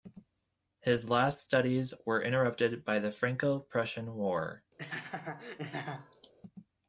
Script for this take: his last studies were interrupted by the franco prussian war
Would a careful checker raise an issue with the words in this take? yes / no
no